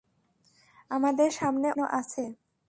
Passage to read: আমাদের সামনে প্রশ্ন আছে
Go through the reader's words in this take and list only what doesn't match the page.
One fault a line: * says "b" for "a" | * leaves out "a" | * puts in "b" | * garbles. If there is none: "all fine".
all fine